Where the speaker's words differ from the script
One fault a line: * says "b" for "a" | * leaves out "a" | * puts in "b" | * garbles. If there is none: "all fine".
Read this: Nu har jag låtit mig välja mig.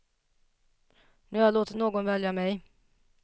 * says "någon" for "mig"